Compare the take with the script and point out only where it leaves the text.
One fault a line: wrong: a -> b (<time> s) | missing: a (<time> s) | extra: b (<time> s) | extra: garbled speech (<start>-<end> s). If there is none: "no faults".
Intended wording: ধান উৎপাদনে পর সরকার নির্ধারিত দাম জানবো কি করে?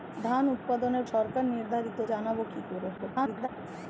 missing: পর (1.0 s)
missing: দাম (2.0 s)
extra: garbled speech (3.0-3.5 s)